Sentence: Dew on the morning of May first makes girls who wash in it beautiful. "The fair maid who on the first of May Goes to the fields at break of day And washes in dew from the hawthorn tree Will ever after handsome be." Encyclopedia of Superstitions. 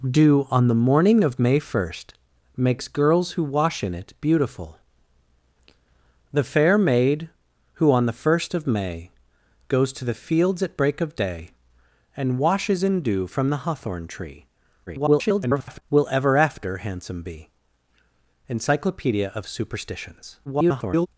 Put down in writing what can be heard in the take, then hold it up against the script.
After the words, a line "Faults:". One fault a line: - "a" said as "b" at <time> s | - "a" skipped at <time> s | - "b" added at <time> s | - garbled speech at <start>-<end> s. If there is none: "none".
Dew on the morning of May first makes girls who wash in it beautiful. "The fair maid who on the first of May Goes to the fields at break of day And washes in dew from the hawthorn tree [garbled] Will ever after handsome be." Encyclopedia of Superstitions. [garbled]
Faults:
- garbled speech at 14.9-15.8 s
- garbled speech at 20.5-21.1 s